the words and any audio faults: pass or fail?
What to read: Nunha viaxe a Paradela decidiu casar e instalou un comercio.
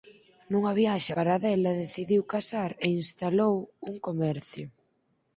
fail